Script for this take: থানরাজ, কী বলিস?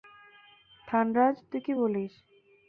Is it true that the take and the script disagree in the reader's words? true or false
true